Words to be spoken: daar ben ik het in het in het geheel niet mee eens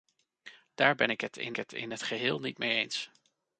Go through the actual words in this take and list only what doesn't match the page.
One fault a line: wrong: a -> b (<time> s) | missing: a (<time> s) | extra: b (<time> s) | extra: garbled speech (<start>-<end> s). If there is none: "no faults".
no faults